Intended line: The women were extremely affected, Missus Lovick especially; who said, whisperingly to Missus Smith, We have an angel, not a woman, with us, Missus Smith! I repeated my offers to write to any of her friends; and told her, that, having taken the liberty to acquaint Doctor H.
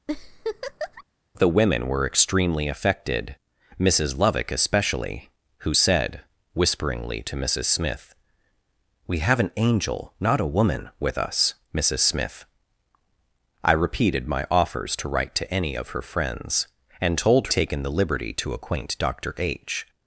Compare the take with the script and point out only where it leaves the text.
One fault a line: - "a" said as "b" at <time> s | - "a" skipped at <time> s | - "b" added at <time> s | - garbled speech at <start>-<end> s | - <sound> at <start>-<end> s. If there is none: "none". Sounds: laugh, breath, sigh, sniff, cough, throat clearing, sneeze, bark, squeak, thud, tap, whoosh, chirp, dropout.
- laugh at 0.1-1.0 s
- "her that having" skipped at 17.5 s